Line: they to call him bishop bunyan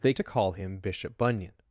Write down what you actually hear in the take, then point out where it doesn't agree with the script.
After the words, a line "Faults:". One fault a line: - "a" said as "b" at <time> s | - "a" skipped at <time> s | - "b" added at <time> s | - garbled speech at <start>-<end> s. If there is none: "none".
they to call him bishop bunyan
Faults:
none